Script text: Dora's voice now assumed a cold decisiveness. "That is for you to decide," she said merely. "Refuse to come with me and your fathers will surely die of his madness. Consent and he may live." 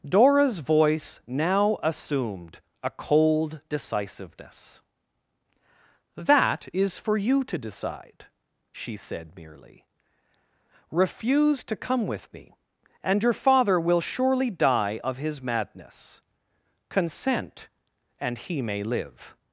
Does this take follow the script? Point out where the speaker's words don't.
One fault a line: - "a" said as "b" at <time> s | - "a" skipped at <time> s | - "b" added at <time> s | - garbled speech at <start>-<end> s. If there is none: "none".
- "fathers" said as "father" at 13.3 s